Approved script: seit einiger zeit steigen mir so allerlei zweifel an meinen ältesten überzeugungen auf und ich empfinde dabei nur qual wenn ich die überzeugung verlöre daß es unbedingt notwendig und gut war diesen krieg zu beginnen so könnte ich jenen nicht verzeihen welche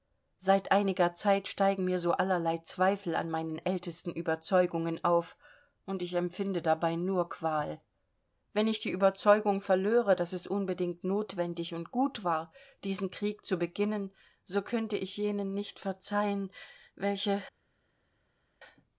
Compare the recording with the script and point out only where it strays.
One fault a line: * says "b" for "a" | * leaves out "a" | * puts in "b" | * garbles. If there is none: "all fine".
all fine